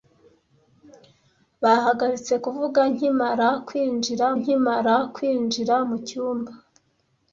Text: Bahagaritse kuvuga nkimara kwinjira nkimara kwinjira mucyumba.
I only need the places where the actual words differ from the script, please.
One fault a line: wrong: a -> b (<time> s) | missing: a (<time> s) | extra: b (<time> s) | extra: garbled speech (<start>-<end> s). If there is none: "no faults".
no faults